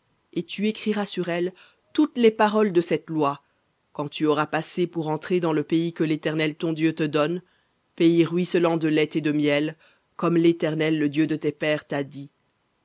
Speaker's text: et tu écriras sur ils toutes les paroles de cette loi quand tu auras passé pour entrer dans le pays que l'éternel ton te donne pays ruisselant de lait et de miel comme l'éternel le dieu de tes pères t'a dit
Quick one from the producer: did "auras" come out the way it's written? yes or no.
yes